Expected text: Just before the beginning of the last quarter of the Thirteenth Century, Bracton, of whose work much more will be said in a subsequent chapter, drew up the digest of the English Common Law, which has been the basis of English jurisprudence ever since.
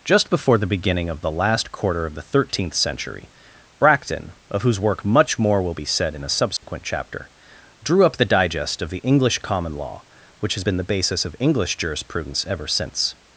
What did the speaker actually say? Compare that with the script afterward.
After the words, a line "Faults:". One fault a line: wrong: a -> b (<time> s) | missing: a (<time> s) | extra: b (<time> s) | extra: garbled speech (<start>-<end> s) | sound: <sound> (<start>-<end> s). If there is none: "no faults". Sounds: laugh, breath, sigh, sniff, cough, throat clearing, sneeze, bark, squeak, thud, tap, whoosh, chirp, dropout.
Just before the beginning of the last quarter of the Thirteenth Century, Bracton, of whose work much more will be said in a subsequent chapter, drew up the digest of the English Common Law, which has been the basis of English jurisprudence ever since.
Faults:
sound: dropout (6.6-6.6 s)